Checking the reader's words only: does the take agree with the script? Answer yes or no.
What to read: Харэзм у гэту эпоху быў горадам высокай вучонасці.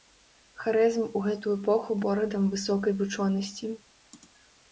no